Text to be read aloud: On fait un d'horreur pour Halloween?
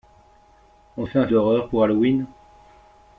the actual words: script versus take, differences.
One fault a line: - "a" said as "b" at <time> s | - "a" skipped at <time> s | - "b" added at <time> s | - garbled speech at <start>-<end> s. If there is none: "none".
none